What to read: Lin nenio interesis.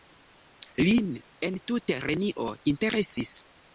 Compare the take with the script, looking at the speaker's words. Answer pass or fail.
fail